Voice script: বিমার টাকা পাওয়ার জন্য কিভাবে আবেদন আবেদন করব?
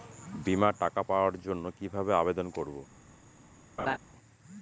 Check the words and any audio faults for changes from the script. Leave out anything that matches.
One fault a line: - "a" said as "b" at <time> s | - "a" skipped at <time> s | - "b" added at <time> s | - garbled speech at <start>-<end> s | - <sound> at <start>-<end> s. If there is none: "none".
- "আবেদন" skipped at 2.5 s
- laugh at 3.8-4.0 s